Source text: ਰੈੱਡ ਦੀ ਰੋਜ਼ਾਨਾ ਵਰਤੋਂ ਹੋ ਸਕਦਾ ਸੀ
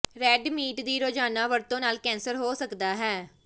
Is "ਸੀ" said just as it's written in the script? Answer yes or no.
no